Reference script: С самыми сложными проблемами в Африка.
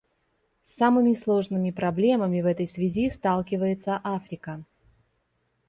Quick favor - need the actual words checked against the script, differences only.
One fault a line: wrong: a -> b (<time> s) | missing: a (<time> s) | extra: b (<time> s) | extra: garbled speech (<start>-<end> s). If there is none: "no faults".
extra: этой связи сталкивается (2.5 s)